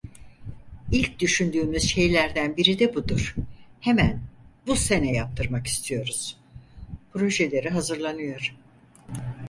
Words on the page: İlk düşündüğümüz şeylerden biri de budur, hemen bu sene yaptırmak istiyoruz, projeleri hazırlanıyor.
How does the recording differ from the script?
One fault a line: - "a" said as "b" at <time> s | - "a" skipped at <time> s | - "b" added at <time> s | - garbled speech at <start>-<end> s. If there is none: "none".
none